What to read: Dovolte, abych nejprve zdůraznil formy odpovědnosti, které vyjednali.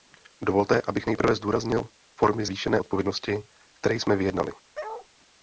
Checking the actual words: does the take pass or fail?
fail